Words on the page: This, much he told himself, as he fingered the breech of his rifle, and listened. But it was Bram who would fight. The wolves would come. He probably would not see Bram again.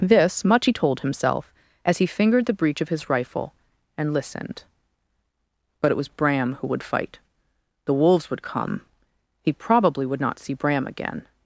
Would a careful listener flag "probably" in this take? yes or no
no